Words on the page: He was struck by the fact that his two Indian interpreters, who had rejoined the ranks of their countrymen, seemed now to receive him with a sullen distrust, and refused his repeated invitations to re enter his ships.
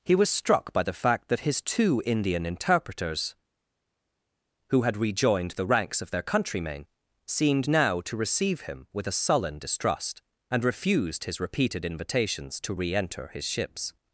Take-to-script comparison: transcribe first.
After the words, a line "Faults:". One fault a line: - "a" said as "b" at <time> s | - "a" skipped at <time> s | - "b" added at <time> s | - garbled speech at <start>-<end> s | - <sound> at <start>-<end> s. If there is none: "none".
He was struck by the fact that his two Indian interpreters, who had rejoined the ranks of their countrymen, seemed now to receive him with a sullen distrust, and refused his repeated invitations to re enter his ships.
Faults:
none